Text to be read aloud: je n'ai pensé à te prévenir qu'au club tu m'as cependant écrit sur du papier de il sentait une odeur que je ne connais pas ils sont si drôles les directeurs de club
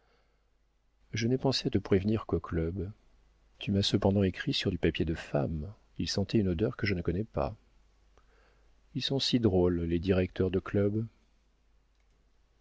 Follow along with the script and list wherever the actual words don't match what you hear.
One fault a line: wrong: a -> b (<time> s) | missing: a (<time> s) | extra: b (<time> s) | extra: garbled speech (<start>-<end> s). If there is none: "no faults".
extra: femme (5.1 s)